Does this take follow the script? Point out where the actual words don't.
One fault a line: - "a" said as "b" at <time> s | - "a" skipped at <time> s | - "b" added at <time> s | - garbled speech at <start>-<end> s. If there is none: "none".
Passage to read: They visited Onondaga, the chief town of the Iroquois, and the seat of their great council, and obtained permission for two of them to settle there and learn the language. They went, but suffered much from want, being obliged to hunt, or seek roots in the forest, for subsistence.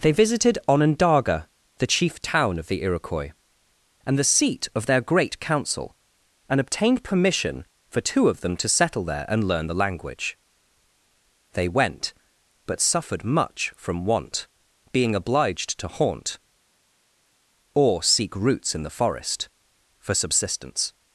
- "hunt" said as "haunt" at 15.9 s